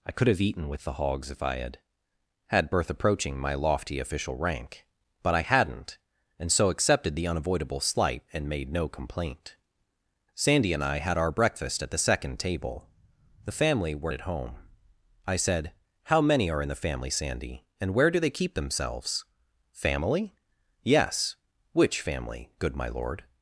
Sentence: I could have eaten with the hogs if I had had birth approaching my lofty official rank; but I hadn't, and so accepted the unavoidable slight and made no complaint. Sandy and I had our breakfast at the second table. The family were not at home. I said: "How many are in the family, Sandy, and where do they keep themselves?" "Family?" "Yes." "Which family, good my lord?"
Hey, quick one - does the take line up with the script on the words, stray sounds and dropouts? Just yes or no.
no